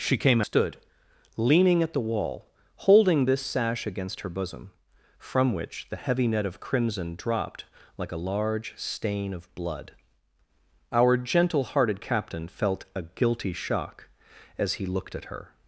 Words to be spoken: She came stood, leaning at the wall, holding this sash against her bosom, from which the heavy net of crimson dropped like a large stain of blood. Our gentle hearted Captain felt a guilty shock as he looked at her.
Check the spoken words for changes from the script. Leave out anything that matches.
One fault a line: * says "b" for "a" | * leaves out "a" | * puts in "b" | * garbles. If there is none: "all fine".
all fine